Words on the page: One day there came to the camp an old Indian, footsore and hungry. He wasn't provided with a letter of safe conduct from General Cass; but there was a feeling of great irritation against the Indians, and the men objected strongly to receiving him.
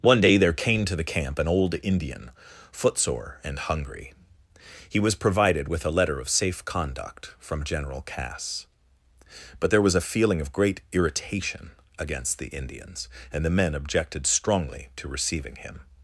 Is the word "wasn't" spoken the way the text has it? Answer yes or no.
no